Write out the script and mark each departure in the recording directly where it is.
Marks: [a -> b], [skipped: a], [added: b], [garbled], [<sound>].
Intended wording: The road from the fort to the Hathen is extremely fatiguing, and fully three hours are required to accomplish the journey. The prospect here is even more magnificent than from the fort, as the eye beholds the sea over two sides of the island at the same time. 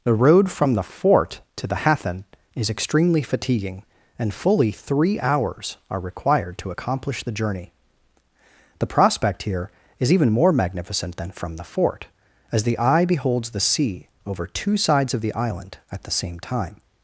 The road from the fort to the Hathen is extremely fatiguing, and fully three hours are required to accomplish the journey. The prospect here is even more magnificent than from the fort, as the eye beholds the sea over two sides of the island at the same time.